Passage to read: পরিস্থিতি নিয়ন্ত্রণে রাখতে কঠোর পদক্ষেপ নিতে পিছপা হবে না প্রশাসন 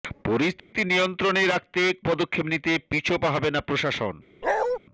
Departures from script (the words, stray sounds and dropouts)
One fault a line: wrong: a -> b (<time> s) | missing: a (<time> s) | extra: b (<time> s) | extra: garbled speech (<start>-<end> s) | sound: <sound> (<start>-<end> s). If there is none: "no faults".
sound: dropout (0.6-0.7 s)
missing: কঠোর (1.8 s)
sound: bark (4.4-4.8 s)